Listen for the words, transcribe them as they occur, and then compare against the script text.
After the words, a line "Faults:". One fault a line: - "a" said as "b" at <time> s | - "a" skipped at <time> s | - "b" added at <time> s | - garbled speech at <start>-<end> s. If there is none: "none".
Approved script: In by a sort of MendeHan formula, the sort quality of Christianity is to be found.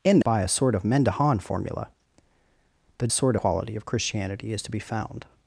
In by a sort of MendeHan formula, the sort quality of Christianity is to be found.
Faults:
none